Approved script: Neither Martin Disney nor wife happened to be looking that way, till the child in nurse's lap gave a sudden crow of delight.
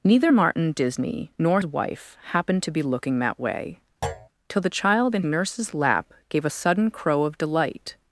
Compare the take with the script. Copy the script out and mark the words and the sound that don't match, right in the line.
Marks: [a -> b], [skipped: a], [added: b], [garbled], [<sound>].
Neither Martin Disney nor wife happened to be looking that way, [thud] till the child in nurse's lap gave a sudden crow of delight.